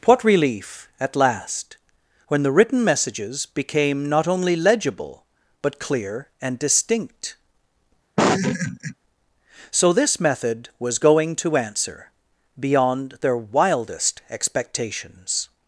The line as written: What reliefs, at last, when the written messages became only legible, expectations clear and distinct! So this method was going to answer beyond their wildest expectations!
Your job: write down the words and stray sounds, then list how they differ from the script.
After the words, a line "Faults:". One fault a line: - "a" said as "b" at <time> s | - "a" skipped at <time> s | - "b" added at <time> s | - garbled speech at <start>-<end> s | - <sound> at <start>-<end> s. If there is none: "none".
What relief, at last, when the written messages became not only legible, but clear and distinct! So this method was going to answer beyond their wildest expectations!
Faults:
- "reliefs" said as "relief" at 0.2 s
- "not" added at 4.1 s
- "expectations" said as "but" at 5.6 s
- laugh at 8.2-8.9 s